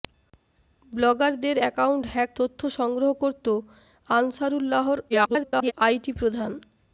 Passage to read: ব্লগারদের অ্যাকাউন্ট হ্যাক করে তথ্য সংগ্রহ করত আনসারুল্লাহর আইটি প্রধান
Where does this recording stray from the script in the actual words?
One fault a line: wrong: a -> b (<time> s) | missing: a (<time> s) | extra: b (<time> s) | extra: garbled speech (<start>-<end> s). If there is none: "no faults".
missing: করে (2.3 s)
extra: garbled speech (5.1-5.7 s)